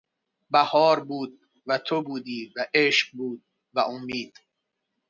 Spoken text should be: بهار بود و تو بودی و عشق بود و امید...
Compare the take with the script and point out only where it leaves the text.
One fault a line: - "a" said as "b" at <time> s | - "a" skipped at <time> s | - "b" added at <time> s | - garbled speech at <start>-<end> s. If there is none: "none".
none